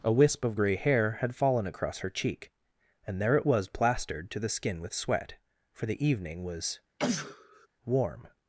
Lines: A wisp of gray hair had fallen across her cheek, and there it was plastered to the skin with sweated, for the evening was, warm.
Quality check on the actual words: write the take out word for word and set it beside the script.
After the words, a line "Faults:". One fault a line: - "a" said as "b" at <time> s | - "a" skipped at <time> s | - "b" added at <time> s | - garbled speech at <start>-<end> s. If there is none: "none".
A wisp of gray hair had fallen across her cheek, and there it was plastered to the skin with sweat, for the evening was, warm.
Faults:
- "sweated" said as "sweat" at 4.9 s